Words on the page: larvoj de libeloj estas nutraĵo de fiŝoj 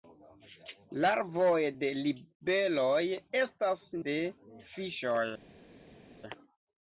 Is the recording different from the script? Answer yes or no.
yes